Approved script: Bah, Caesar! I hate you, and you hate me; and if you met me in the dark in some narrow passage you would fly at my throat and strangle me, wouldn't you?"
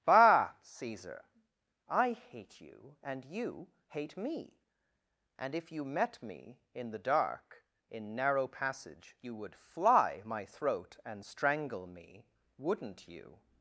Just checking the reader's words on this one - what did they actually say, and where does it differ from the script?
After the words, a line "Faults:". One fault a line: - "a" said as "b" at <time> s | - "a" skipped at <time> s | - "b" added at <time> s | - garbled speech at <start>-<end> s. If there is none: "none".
Bah, Caesar! I hate you, and you hate me; and if you met me in the dark in narrow passage you would fly my throat and strangle me, wouldn't you?"
Faults:
- "some" skipped at 8.2 s
- "at" skipped at 10.2 s